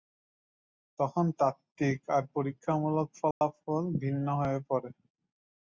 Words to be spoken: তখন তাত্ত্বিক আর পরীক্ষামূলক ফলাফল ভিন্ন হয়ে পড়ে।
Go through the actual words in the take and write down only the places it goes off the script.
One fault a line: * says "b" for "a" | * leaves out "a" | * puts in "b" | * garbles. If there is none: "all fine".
all fine